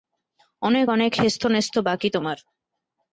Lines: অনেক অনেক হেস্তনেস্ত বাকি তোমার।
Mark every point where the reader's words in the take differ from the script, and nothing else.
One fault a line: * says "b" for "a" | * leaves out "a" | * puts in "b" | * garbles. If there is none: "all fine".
all fine